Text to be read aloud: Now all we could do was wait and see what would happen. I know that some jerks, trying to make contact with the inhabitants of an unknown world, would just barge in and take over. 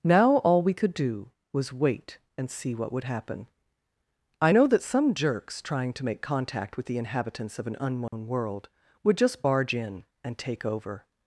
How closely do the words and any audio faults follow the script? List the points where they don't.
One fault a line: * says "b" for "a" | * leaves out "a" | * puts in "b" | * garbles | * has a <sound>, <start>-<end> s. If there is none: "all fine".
* has a dropout, 8.1-8.1 s